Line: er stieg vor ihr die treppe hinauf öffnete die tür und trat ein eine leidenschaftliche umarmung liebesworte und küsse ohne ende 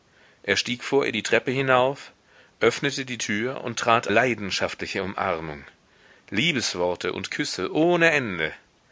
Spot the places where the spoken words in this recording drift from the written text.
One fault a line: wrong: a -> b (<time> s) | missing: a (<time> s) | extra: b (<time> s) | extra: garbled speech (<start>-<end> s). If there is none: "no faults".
missing: ein eine (4.1 s)